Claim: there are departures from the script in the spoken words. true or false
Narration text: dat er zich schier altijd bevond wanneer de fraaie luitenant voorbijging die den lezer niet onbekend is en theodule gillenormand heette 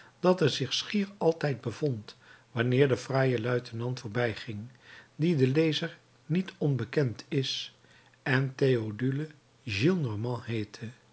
false